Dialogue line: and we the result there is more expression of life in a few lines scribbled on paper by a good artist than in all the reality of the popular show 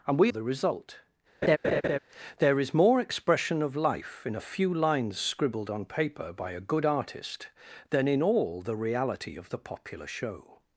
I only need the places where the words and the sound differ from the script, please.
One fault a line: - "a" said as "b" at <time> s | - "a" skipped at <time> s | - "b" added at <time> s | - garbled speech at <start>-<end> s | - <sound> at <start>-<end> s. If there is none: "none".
- laugh at 1.4-2.0 s